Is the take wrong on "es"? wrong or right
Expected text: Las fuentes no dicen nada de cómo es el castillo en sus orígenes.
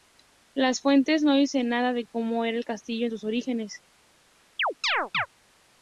wrong